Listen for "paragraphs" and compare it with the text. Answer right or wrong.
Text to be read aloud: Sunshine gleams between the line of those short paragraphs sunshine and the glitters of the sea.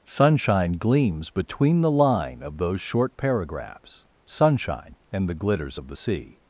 right